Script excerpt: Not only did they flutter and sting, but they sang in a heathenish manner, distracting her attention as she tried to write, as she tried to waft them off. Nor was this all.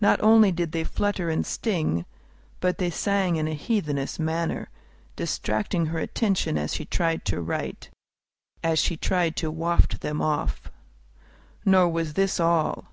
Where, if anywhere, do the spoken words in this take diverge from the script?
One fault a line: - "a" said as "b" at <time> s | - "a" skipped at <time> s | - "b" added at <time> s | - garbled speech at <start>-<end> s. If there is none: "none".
none